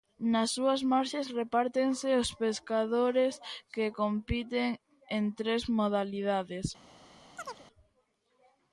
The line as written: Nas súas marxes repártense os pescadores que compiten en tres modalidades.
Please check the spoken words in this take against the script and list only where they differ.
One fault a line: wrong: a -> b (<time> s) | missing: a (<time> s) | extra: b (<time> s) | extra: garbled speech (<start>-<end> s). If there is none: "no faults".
no faults